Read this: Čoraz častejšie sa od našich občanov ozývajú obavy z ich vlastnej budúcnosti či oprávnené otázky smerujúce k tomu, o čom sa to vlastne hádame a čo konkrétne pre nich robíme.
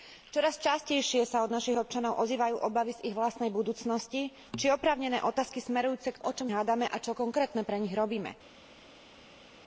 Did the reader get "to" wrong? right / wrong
wrong